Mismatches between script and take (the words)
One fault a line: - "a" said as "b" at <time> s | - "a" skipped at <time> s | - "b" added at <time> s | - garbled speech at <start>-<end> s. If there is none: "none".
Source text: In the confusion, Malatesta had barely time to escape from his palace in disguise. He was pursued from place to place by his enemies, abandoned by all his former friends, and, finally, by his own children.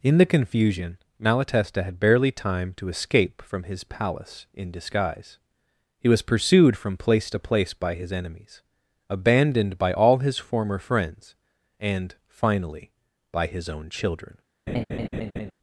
none